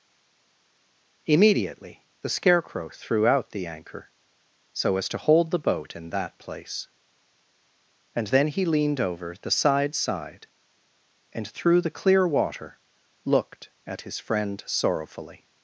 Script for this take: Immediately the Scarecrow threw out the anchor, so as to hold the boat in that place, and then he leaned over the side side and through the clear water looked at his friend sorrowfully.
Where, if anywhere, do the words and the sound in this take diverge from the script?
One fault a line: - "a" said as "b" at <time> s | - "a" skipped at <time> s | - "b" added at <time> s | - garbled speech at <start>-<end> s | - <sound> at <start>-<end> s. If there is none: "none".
none